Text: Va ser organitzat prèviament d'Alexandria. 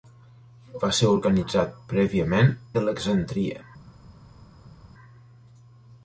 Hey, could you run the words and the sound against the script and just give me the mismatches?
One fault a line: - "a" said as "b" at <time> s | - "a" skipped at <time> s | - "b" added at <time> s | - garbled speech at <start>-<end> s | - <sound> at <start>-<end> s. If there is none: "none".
none